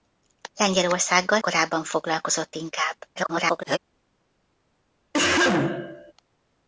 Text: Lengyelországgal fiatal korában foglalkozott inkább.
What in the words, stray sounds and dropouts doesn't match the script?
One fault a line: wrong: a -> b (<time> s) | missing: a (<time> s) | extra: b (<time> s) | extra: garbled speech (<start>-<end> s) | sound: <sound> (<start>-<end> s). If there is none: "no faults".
missing: fiatal (1.4 s)
extra: garbled speech (3.2-3.8 s)
sound: cough (5.1-6.1 s)